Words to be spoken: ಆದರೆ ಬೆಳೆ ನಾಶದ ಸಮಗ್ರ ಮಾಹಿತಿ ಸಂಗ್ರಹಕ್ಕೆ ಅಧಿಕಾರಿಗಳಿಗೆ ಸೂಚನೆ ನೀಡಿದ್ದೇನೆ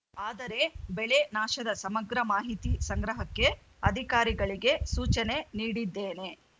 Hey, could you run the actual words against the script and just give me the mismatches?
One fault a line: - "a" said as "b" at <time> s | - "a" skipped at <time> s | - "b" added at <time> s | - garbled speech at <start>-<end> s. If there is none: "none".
none